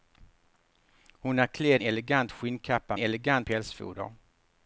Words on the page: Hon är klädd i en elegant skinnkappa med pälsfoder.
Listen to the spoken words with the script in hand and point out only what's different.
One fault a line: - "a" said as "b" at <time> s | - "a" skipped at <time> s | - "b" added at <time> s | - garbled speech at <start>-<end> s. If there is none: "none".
- "i en" skipped at 1.8 s
- "med" said as "elegant" at 3.0 s